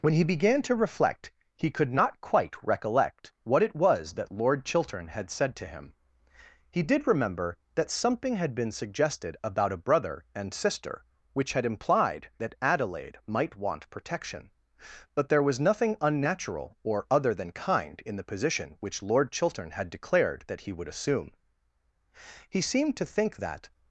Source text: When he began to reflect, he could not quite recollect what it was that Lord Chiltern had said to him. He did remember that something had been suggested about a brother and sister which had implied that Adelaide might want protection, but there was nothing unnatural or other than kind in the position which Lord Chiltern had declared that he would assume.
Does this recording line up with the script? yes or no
no